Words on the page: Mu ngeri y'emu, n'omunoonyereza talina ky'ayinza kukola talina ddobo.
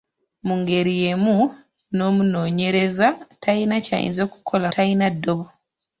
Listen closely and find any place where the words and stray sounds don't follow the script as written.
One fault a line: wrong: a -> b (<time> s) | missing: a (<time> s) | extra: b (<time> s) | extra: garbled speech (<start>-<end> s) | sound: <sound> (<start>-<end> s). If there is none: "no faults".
no faults